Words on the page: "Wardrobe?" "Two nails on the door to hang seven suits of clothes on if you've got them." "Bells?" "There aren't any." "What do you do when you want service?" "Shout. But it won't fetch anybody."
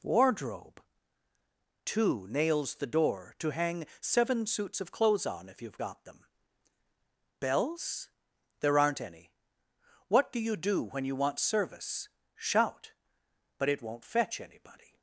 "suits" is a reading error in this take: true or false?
false